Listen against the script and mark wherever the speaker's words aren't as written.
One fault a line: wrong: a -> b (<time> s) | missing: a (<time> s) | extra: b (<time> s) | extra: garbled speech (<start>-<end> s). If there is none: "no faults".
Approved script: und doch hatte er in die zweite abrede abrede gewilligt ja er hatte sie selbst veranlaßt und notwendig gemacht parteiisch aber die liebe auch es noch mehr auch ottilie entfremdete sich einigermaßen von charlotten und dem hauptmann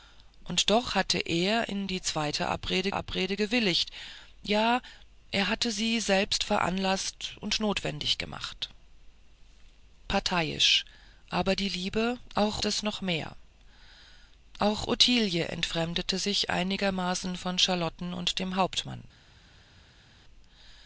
no faults